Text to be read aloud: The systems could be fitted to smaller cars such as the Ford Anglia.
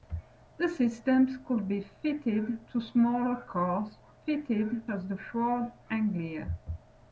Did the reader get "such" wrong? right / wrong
wrong